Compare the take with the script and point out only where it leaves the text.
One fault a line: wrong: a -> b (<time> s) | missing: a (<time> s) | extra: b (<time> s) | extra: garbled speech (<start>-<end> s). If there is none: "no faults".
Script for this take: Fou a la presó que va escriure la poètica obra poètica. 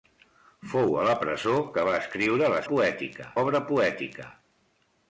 no faults